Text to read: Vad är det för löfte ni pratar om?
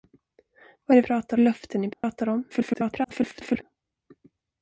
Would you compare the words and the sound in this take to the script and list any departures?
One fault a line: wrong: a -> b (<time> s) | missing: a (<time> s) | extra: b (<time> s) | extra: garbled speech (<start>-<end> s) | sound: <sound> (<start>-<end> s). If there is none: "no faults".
wrong: för -> pratar (1.0 s)
sound: dropout (1.9-2.0 s)
extra: garbled speech (2.5-3.6 s)